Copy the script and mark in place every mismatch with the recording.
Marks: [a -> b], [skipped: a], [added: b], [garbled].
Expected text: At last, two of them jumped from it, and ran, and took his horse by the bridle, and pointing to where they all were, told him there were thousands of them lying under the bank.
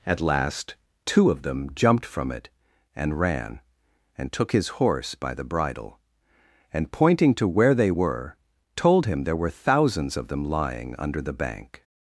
At last, two of them jumped from it, and ran, and took his horse by the bridle, and pointing to where they [skipped: all] were, told him there were thousands of them lying under the bank.